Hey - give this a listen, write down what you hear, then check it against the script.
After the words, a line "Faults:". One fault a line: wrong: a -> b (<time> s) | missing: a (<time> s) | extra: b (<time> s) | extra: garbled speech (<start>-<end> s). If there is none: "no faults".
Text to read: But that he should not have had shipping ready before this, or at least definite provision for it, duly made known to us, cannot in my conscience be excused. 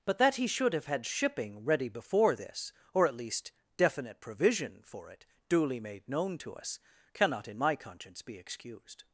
But that he should have had shipping ready before this, or at least definite provision for it, duly made known to us, cannot in my conscience be excused.
Faults:
missing: not (0.7 s)